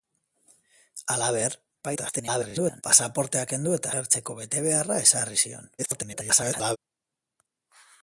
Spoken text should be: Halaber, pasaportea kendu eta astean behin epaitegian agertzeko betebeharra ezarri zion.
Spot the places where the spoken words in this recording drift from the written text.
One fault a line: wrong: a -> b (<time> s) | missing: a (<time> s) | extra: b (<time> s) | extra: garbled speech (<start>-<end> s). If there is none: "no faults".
extra: garbled speech (1.8-2.8 s)
missing: astean behin epaitegian (3.9 s)
extra: garbled speech (5.8-6.8 s)